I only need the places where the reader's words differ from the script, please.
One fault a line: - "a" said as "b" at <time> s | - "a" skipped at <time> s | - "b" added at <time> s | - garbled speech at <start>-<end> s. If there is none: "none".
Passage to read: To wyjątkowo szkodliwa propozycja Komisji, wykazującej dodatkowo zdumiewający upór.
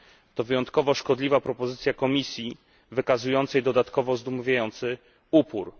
none